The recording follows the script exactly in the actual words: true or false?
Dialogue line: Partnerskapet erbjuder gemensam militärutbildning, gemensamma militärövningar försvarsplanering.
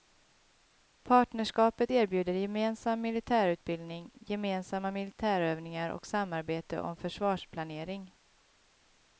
false